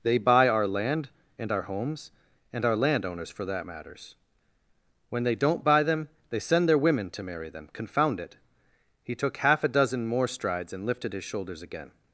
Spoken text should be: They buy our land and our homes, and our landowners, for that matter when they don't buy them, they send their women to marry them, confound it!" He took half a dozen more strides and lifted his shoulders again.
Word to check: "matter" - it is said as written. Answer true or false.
false